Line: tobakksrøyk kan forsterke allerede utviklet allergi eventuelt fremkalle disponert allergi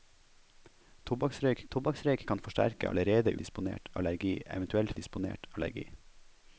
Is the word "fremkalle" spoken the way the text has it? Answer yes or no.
no